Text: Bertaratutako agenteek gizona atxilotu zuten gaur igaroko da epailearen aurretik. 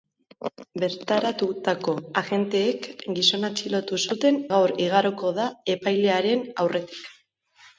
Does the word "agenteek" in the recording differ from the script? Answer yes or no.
no